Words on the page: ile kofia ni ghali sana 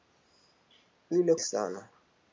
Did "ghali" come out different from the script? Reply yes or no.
yes